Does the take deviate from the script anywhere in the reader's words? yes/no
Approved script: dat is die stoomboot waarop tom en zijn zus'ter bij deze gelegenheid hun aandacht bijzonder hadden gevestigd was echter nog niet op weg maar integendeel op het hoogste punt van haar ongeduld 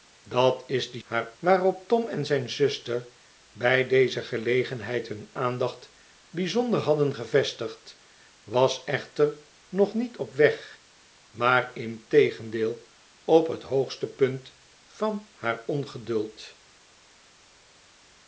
yes